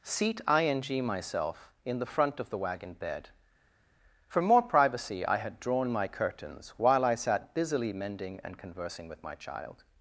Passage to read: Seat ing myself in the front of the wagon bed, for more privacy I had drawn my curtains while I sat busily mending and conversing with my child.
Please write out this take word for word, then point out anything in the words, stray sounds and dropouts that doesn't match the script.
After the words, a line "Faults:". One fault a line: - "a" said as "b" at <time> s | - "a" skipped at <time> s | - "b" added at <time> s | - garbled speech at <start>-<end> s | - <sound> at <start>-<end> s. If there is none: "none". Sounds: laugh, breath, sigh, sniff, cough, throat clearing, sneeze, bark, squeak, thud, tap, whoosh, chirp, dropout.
Seat ing myself in the front of the wagon bed, for more privacy I had drawn my curtains while I sat busily mending and conversing with my child.
Faults:
none